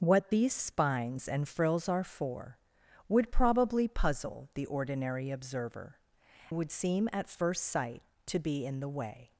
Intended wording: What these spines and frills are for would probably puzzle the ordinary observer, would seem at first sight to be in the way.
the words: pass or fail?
pass